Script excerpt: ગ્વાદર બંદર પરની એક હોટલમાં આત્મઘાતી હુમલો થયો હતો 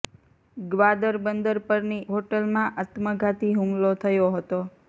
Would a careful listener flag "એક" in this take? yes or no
yes